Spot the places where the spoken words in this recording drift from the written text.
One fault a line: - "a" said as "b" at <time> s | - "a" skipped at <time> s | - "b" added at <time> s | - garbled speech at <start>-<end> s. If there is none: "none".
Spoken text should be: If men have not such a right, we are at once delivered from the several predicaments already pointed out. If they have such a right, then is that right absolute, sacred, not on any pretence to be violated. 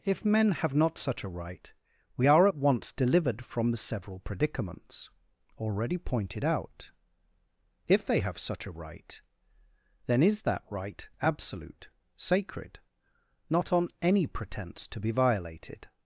none